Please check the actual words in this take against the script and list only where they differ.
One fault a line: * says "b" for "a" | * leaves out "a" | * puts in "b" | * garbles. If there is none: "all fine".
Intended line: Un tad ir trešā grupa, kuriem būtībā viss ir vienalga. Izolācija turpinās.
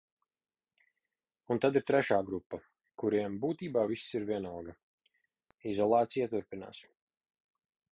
all fine